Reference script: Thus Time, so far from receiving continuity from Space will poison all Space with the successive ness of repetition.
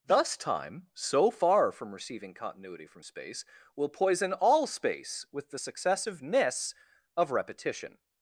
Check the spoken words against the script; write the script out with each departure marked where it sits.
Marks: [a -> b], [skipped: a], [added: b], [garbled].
Thus Time, so far from receiving continuity from Space will poison all Space with the successive ness of repetition.